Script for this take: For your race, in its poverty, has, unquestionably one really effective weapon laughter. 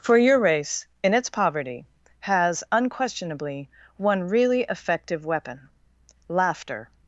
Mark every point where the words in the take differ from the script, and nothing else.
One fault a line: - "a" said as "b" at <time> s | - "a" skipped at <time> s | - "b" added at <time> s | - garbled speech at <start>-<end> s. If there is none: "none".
none